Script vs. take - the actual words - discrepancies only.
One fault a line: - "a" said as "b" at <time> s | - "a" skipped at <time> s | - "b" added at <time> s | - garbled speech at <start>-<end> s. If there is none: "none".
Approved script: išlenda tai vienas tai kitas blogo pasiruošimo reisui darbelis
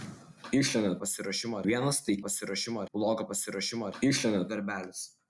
- "tai" said as "pasiruošimo" at 1.0 s
- "kitas" said as "pasiruošimo" at 2.2 s
- "reisui" said as "išlenda" at 4.0 s